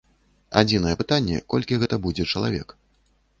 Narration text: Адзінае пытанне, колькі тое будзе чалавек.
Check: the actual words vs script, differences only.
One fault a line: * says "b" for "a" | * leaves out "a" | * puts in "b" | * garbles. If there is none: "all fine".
* says "гэта" for "тое"